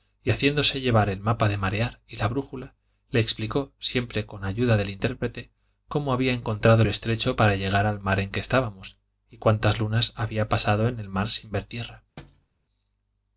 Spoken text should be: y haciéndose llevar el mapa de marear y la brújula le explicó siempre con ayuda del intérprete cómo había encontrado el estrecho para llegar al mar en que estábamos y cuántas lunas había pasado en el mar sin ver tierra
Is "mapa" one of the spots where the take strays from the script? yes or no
no